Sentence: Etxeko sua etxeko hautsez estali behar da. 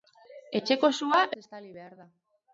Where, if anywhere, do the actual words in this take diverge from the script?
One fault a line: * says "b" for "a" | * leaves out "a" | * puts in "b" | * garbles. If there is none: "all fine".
* leaves out "etxeko hautsez"